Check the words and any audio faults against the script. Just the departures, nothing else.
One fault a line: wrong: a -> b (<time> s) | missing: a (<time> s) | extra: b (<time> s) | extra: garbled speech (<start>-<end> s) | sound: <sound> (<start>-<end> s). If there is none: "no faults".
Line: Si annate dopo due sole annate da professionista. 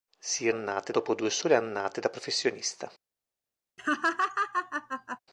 sound: laugh (3.8-5.2 s)